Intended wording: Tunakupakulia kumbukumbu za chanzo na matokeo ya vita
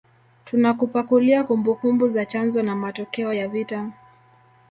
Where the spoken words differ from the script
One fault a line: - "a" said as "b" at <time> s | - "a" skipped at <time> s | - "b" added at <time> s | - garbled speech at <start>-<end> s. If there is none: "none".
none